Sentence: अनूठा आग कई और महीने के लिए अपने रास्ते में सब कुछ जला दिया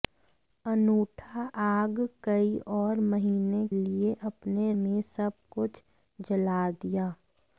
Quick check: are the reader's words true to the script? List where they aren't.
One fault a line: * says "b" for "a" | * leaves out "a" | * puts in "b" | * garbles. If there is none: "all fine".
* leaves out "के"
* leaves out "रास्ते"